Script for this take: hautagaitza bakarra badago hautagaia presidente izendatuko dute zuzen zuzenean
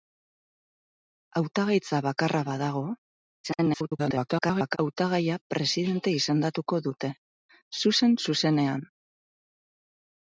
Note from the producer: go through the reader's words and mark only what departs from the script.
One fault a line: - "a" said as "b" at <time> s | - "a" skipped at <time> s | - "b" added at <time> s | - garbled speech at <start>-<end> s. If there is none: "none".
- garbled speech at 3.4-4.8 s